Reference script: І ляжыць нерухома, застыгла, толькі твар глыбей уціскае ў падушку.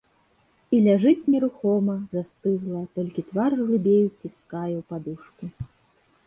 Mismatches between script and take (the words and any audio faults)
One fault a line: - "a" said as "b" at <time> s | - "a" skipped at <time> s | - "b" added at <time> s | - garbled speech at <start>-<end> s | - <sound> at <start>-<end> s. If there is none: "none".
none